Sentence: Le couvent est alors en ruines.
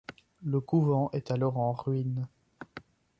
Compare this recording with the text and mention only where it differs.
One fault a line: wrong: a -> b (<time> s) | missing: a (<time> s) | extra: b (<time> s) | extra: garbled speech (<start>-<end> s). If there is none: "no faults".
no faults